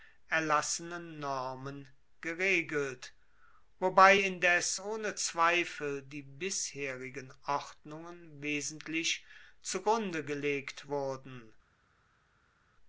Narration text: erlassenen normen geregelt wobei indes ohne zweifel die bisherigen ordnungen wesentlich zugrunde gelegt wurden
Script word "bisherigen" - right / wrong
right